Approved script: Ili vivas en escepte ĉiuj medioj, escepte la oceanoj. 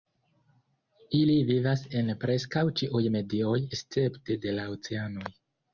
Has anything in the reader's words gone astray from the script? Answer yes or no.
yes